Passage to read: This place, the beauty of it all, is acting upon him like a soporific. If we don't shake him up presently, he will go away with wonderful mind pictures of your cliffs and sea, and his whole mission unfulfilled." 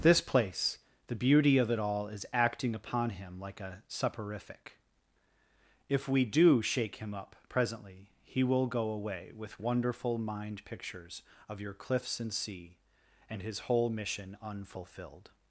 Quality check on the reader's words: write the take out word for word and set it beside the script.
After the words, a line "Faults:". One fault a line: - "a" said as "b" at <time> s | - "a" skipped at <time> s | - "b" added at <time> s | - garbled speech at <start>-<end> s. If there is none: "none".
This place, the beauty of it all, is acting upon him like a soporific. If we do shake him up presently, he will go away with wonderful mind pictures of your cliffs and sea, and his whole mission unfulfilled."
Faults:
- "don't" said as "do" at 6.2 s